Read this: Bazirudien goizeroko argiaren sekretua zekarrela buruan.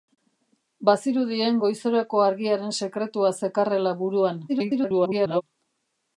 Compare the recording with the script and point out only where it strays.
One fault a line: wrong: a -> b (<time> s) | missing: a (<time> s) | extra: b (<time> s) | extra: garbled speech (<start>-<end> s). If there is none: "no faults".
extra: garbled speech (4.5-5.4 s)